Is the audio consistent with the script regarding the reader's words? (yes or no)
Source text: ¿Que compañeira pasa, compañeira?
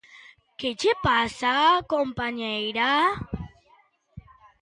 no